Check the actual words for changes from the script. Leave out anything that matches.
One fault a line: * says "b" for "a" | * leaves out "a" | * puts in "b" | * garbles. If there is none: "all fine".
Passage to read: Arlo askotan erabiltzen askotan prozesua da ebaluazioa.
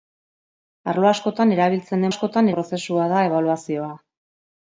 all fine